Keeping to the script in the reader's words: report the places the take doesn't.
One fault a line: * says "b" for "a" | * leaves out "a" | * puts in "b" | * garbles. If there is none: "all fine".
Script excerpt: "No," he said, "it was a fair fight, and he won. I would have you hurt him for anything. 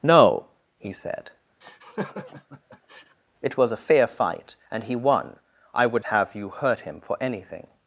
all fine